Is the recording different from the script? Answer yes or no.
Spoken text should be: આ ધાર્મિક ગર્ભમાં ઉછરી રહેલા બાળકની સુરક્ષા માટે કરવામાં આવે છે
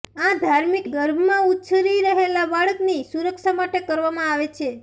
no